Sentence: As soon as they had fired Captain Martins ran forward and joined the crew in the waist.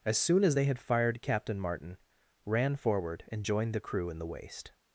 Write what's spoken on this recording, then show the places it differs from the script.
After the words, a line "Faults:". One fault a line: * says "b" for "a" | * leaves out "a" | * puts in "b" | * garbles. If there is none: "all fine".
As soon as they had fired Captain Martin ran forward and joined the crew in the waist.
Faults:
* says "Martin" for "Martins"